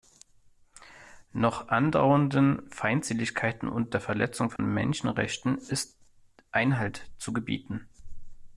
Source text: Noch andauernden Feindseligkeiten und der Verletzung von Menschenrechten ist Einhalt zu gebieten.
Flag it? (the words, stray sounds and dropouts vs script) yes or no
yes